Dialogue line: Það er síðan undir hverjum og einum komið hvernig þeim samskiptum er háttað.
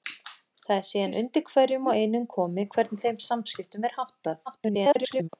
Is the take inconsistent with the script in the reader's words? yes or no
yes